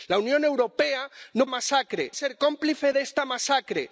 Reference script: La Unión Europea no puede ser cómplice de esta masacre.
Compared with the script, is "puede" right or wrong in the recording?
wrong